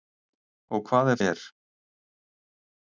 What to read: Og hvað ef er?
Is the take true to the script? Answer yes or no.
yes